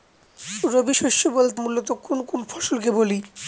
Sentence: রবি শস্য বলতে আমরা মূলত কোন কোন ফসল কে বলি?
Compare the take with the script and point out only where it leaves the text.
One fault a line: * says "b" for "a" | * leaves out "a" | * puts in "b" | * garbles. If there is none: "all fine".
* leaves out "আমরা"